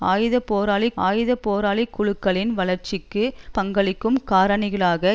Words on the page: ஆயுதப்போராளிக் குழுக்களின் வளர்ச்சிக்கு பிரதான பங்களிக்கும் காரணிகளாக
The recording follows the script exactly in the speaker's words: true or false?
false